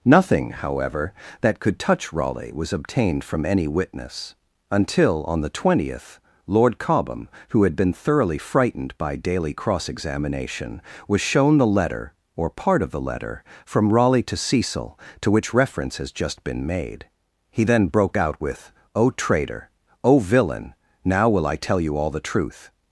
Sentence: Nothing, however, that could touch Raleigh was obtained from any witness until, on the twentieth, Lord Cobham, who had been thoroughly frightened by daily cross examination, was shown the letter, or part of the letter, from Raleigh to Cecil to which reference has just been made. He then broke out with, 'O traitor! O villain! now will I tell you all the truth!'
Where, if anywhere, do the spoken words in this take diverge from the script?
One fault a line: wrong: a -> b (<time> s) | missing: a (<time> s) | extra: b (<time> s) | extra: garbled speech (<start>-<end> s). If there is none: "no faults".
no faults